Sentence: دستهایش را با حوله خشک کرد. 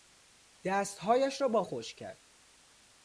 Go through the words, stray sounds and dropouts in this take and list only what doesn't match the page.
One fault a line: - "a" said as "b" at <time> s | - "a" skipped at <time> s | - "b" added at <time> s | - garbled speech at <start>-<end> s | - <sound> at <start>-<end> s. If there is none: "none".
- "حوله" skipped at 1.6 s